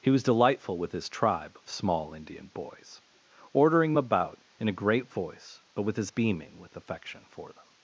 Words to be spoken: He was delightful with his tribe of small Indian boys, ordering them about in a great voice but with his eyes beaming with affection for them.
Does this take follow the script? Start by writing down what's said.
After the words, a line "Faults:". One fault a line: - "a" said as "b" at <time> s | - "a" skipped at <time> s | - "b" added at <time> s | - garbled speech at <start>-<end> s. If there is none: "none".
He was delightful with his tribe of small Indian boys, ordering about in a great voice but with his beaming with affection for them.
Faults:
- "them" skipped at 3.9 s
- "eyes" skipped at 6.1 s